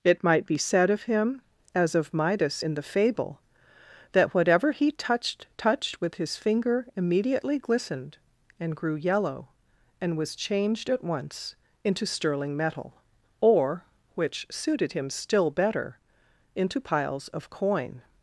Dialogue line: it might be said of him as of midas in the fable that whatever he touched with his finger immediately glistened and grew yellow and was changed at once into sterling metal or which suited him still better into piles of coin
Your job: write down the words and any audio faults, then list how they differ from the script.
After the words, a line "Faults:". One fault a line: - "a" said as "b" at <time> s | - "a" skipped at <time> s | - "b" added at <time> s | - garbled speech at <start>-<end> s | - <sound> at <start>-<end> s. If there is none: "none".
it might be said of him as of midas in the fable that whatever he touched touched with his finger immediately glistened and grew yellow and was changed at once into sterling metal or which suited him still better into piles of coin
Faults:
- "touched" added at 5.6 s